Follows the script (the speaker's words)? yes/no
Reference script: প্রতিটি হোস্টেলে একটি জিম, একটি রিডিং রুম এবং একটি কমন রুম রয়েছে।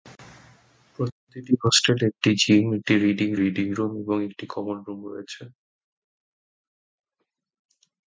no